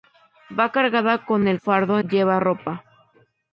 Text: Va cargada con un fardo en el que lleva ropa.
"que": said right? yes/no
no